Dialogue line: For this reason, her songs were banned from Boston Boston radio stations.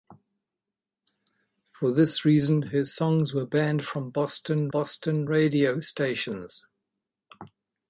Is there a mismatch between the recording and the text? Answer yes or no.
no